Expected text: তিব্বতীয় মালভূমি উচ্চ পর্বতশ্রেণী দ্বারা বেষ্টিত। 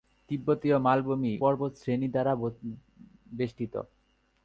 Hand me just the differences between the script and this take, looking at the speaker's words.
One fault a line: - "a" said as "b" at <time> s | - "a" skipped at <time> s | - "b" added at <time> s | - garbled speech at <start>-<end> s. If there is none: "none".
- "উচ্চ" skipped at 1.3 s